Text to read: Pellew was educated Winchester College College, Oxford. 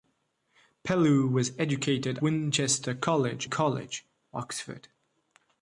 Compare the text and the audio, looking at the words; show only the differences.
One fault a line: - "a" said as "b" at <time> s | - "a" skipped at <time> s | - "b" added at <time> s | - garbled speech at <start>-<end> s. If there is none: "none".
none